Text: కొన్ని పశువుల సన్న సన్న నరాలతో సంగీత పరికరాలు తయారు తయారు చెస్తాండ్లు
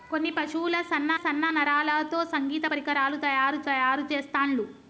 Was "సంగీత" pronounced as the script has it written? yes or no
yes